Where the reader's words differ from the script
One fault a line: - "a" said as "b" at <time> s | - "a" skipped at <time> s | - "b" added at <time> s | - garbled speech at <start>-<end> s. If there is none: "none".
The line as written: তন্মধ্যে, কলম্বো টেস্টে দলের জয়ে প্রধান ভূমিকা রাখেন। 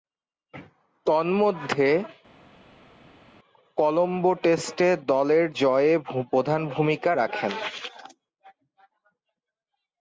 none